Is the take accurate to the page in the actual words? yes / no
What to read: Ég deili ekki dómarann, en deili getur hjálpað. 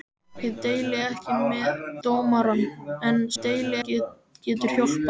yes